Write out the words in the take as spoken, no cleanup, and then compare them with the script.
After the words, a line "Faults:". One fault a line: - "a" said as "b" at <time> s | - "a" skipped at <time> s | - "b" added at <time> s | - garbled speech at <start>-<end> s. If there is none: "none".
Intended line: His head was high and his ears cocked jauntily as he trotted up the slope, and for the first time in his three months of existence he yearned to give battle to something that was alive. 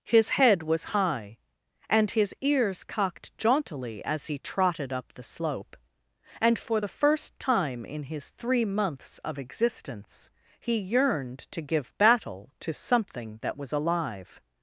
His head was high and his ears cocked jauntily as he trotted up the slope, and for the first time in his three months of existence he yearned to give battle to something that was alive.
Faults:
none